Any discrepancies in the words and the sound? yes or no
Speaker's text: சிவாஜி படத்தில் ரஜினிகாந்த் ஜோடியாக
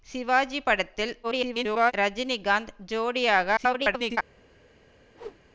yes